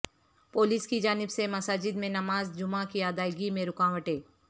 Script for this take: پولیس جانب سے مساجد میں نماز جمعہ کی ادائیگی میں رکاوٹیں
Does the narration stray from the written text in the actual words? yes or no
yes